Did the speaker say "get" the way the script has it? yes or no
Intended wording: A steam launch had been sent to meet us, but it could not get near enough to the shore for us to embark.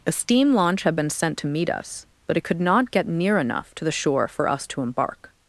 yes